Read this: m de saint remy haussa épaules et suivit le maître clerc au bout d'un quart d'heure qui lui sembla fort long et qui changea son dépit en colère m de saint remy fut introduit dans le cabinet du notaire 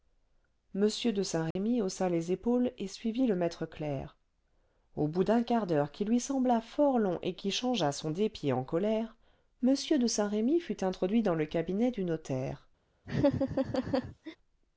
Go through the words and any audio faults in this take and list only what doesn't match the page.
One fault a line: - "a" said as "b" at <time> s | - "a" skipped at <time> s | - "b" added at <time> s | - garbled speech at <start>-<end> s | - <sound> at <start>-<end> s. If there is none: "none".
- dropout at 1.5-1.6 s
- "les" added at 2.1 s
- laugh at 13.0-14.4 s